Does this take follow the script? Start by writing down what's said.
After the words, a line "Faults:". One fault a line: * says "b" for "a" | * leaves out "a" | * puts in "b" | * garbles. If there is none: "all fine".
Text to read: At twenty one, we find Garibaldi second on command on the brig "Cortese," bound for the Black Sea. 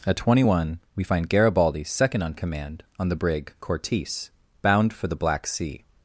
At twenty one, we find Garibaldi second on command on the brig "Cortese," bound for the Black Sea.
Faults:
all fine